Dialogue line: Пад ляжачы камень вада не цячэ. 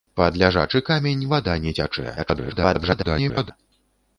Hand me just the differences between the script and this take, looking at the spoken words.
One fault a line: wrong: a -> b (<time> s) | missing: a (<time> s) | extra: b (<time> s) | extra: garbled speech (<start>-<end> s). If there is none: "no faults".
extra: garbled speech (2.2-3.5 s)